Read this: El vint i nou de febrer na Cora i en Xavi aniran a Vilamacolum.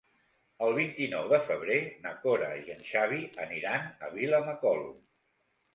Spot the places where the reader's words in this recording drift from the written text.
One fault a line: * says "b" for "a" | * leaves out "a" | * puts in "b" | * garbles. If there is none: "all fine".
all fine